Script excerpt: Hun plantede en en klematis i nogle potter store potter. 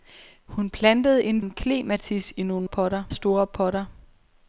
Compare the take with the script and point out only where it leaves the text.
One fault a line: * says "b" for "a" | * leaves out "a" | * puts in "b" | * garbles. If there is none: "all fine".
all fine